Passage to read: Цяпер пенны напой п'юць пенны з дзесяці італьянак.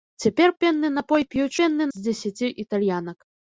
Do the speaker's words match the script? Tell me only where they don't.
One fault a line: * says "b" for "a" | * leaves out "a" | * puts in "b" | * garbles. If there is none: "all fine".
all fine